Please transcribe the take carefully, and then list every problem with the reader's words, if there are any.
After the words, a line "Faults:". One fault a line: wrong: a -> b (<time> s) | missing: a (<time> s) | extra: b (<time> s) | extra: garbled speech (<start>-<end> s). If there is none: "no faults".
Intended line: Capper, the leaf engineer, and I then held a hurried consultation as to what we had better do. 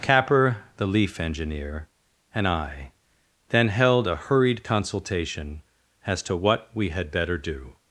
Capper, the leaf engineer, and I then held a hurried consultation as to what we had better do.
Faults:
no faults